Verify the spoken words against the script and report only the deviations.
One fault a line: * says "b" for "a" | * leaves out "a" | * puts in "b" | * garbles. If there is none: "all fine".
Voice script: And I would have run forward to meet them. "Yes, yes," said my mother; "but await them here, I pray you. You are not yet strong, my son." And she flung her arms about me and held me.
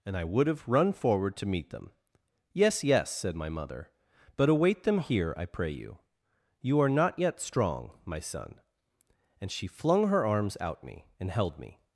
* says "out" for "about"